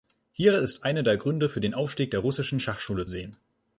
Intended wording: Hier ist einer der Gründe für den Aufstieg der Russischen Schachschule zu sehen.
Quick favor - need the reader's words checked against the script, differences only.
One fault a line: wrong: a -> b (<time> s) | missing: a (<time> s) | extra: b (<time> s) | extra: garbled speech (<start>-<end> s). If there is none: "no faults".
missing: zu (3.1 s)